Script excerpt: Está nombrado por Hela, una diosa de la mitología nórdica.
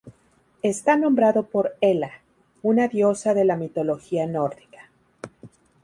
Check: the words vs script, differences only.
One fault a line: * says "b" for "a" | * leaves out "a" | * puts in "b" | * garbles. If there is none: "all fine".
all fine